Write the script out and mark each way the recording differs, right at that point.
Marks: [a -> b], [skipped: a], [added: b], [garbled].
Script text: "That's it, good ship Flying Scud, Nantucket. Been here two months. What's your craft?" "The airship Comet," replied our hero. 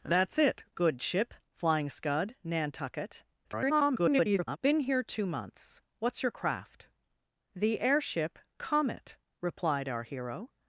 "That's it, good ship Flying Scud, Nantucket. [garbled] Been here two months. What's your craft?" "The airship Comet," replied our hero.